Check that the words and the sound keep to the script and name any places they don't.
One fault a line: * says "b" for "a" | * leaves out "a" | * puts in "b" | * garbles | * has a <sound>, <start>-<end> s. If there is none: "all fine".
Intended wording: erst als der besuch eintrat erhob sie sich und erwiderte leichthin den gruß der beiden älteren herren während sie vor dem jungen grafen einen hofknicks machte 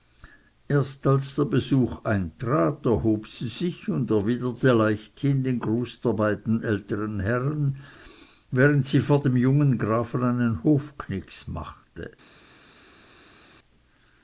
all fine